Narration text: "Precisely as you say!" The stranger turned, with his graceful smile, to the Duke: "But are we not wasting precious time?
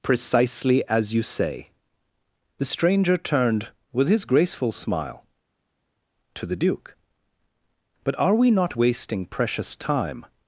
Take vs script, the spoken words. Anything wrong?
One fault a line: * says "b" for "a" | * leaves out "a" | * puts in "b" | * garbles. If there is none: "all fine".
all fine